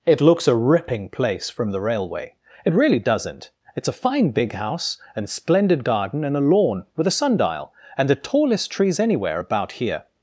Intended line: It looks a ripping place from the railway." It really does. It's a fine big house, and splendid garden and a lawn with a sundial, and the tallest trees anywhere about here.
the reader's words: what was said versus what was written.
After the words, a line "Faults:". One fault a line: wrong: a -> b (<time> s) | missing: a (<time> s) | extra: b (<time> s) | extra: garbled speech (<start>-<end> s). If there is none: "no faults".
It looks a ripping place from the railway." It really doesn't. It's a fine big house, and splendid garden and a lawn with a sundial, and the tallest trees anywhere about here.
Faults:
wrong: does -> doesn't (3.0 s)